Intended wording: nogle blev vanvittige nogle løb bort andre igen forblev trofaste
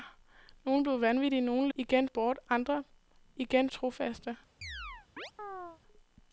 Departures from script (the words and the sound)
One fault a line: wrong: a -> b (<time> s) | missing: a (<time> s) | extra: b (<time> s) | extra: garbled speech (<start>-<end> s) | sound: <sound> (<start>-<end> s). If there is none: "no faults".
wrong: løb -> igen (1.8 s)
missing: forblev (3.7 s)
sound: chirp (4.6-5.8 s)